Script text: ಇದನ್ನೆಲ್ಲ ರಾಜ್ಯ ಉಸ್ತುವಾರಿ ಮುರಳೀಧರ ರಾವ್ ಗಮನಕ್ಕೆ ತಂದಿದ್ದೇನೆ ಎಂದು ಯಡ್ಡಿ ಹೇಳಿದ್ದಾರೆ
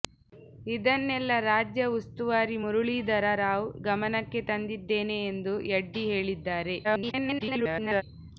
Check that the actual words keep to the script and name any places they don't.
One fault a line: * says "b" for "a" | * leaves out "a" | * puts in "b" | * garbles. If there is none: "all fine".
* garbles